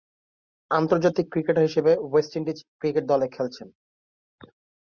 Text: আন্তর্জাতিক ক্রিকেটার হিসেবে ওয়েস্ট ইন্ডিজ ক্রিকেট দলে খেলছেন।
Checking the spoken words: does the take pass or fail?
pass